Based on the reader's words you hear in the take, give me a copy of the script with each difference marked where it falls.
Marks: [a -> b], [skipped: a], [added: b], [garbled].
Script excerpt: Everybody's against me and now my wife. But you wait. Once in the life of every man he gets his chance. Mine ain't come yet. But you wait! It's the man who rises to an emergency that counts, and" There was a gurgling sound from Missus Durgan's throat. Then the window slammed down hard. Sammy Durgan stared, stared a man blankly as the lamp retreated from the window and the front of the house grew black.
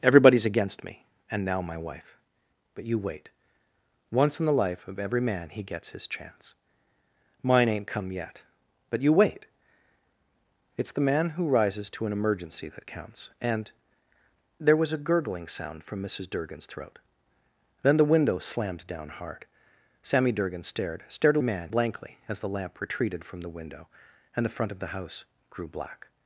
Everybody's against me and now my wife. But you wait. Once in the life of every man he gets his chance. Mine ain't come yet. But you wait! It's the man who rises to an emergency that counts, and" There was a gurgling sound from Missus Durgan's throat. Then the window slammed down hard. Sammy Durgan stared, stared a man blankly as the lamp retreated from the window and the front of the house grew black.